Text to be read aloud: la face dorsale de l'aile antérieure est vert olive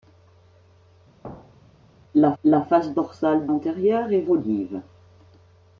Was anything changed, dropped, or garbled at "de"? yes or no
yes